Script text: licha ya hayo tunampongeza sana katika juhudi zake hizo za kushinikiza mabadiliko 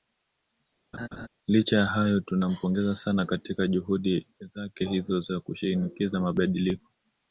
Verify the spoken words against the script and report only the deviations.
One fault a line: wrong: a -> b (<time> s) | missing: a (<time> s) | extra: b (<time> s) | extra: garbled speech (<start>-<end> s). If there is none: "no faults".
no faults